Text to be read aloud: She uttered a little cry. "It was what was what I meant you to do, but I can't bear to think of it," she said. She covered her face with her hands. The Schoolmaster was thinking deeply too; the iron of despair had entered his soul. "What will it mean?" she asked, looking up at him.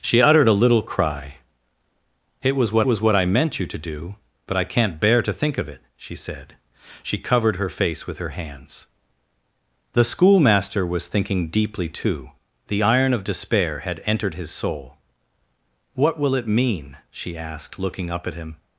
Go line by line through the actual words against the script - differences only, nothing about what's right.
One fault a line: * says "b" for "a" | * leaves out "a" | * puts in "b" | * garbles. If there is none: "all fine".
all fine